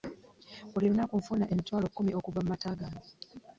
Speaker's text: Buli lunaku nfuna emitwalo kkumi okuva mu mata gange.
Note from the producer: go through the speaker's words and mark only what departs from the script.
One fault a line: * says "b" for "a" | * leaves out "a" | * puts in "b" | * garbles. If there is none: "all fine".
all fine